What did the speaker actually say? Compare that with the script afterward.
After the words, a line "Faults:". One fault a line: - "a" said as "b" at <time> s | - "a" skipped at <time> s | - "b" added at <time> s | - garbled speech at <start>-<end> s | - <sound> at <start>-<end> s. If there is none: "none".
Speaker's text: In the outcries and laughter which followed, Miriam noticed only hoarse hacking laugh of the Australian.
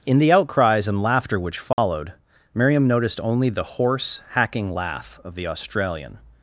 In the outcries and laughter which followed, Miriam noticed only the hoarse hacking laugh of the Australian.
Faults:
- dropout at 1.7-1.8 s
- "the" added at 3.5 s